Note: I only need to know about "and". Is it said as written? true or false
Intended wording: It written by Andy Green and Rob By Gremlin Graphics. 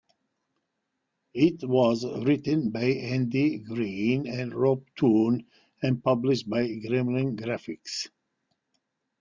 true